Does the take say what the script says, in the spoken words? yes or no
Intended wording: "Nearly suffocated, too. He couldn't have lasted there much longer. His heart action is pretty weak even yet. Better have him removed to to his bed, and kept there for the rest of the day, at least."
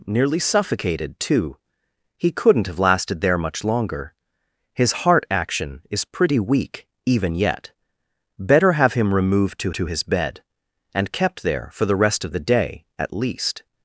yes